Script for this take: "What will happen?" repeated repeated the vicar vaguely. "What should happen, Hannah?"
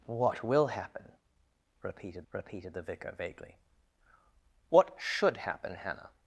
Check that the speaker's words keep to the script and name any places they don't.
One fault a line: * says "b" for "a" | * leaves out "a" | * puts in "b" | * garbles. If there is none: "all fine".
all fine